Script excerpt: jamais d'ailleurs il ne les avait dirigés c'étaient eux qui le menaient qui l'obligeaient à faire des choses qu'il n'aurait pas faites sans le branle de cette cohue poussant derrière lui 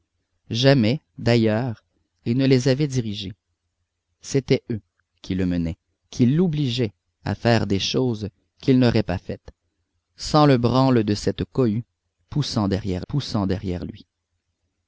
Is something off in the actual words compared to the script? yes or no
yes